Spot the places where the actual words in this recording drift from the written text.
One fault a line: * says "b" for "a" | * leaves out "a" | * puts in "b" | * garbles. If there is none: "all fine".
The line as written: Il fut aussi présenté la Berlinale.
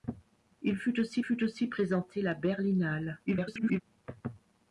* puts in "fut aussi"
* garbles